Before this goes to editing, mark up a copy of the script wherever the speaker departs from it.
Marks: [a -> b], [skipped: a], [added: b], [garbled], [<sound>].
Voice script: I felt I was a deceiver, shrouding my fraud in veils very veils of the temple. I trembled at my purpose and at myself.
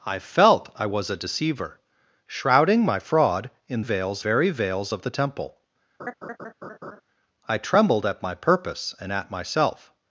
I felt I was a deceiver, shrouding my fraud in veils very veils of the temple. [laugh] I trembled at my purpose and at myself.